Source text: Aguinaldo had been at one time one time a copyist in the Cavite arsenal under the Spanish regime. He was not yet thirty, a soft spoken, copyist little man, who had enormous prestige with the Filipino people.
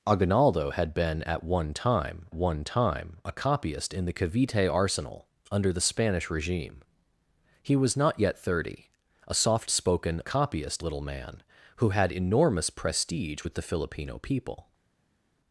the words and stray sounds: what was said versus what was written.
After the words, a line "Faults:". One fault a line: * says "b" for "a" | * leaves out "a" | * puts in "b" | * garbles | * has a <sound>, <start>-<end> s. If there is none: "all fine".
Aguinaldo had been at one time one time a copyist in the Cavite arsenal under the Spanish regime. He was not yet thirty, a soft spoken, copyist little man, who had enormous prestige with the Filipino people.
Faults:
all fine